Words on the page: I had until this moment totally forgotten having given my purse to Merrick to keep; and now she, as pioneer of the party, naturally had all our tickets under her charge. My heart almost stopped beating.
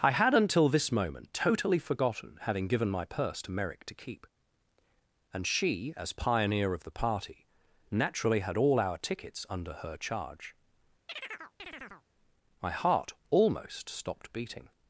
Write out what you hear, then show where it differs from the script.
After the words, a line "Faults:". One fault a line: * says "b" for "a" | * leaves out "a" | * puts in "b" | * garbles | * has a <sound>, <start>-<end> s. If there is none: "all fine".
I had until this moment totally forgotten having given my purse to Merrick to keep; and she, as pioneer of the party, naturally had all our tickets under her charge. My heart almost stopped beating.
Faults:
* leaves out "now"
* has a chirp, 11.1-12.1 s